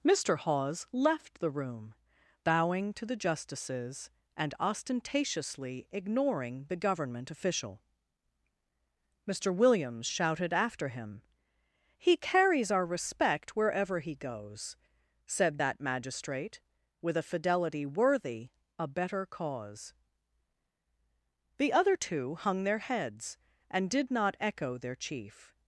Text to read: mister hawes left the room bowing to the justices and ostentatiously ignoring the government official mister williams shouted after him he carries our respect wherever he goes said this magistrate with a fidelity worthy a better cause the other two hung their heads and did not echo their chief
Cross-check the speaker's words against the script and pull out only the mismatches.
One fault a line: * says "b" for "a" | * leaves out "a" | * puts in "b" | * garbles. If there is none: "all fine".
* says "that" for "this"